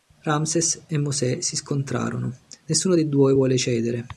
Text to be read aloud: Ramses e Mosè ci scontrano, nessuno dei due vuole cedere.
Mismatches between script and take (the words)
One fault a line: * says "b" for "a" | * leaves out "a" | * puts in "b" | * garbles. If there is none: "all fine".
* says "si" for "ci"